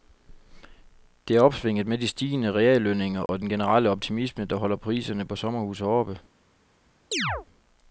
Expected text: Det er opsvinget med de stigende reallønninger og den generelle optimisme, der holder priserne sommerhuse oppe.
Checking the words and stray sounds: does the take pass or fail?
fail